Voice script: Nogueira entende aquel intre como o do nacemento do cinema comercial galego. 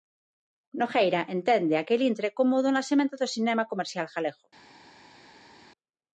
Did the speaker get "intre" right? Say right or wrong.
right